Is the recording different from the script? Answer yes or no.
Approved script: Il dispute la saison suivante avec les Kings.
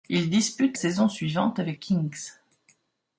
yes